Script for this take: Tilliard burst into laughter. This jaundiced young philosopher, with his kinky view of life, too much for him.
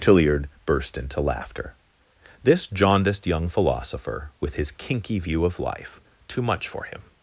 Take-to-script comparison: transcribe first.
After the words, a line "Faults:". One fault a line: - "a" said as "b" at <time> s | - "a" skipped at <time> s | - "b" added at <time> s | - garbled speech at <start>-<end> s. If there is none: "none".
Tilliard burst into laughter. This jaundiced young philosopher, with his kinky view of life, too much for him.
Faults:
none